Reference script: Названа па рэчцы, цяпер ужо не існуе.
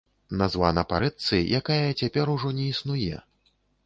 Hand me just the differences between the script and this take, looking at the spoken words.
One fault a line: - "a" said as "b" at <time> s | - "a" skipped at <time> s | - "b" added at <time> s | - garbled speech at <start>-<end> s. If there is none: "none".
- "якая" added at 1.6 s